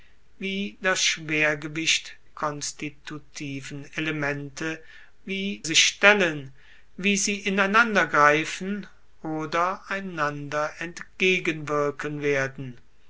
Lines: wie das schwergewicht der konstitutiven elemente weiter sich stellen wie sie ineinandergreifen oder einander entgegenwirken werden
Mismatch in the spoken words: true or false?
true